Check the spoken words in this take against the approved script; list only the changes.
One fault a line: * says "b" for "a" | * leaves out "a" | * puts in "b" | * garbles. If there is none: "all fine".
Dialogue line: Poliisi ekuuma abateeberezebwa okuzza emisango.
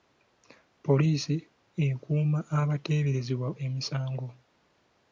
* leaves out "okuzza"